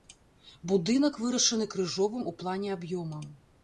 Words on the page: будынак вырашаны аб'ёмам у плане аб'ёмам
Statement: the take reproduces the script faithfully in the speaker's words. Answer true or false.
false